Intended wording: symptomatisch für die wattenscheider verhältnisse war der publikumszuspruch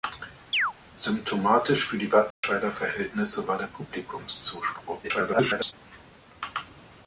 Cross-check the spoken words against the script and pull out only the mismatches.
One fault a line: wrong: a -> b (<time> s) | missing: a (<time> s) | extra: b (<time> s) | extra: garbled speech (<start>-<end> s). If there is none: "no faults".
extra: garbled speech (5.0-5.7 s)